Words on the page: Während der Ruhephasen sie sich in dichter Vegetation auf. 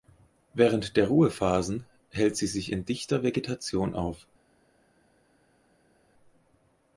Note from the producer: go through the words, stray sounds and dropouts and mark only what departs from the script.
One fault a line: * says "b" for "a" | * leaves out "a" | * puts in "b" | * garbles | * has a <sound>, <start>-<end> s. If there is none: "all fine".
* puts in "hält"